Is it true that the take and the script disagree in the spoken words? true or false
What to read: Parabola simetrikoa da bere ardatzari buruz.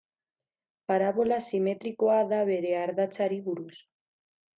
false